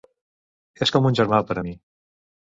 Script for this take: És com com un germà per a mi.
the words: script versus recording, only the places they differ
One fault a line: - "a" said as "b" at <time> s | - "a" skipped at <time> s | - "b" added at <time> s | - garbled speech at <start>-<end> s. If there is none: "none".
- "com" skipped at 1.1 s